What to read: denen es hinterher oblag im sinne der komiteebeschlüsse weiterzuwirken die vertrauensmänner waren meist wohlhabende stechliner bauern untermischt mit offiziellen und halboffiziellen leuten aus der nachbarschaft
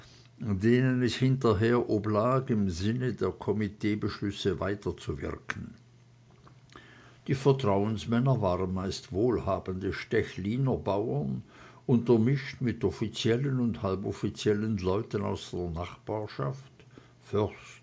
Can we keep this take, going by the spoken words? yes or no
yes